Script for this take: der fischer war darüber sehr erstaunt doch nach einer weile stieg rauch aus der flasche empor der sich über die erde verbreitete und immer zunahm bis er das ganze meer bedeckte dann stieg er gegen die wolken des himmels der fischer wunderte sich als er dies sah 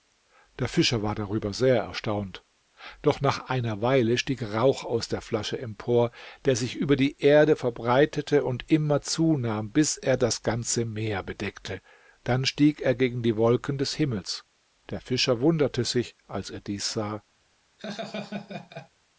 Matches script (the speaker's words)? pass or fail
pass